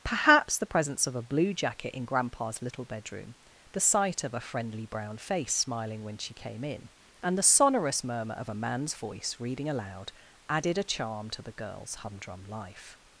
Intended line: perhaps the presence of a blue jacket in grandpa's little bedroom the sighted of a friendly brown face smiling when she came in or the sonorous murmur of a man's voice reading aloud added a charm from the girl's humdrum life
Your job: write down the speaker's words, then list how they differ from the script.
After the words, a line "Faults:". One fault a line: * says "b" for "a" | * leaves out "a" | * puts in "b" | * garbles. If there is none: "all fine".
perhaps the presence of a blue jacket in grandpa's little bedroom the sight of a friendly brown face smiling when she came in and the sonorous murmur of a man's voice reading aloud added a charm to the girl's humdrum life
Faults:
* says "sight" for "sighted"
* says "and" for "or"
* says "to" for "from"